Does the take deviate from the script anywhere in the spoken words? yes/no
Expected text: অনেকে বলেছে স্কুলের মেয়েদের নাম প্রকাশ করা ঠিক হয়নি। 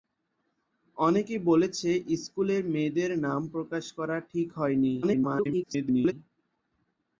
yes